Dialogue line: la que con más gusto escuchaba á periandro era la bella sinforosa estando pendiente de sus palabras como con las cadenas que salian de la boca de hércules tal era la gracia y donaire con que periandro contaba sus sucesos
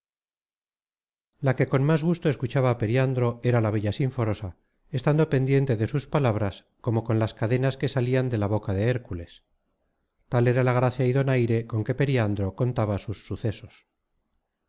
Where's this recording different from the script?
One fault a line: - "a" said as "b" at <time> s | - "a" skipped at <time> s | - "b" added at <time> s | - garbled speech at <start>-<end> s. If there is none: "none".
none